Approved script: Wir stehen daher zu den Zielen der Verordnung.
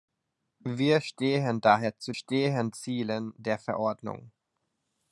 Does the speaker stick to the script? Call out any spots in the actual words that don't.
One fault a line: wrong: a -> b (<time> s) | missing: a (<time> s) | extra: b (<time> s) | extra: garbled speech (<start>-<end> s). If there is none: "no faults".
wrong: den -> stehen (2.1 s)